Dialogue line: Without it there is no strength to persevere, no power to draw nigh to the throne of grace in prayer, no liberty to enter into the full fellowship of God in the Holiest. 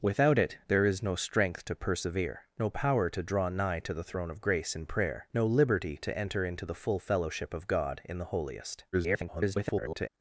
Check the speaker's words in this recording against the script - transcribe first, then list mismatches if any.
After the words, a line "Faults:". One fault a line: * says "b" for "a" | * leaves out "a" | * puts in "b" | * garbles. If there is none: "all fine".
Without it there is no strength to persevere, no power to draw nigh to the throne of grace in prayer, no liberty to enter into the full fellowship of God in the Holiest. [garbled]
Faults:
* garbles